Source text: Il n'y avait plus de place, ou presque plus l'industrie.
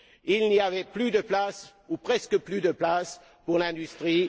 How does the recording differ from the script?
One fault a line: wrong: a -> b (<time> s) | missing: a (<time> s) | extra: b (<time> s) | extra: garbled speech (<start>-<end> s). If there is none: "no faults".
extra: de place pour (2.6 s)